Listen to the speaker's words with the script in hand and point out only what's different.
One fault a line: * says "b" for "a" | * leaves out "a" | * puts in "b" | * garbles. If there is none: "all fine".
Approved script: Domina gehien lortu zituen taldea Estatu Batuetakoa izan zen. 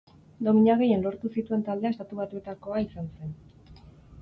all fine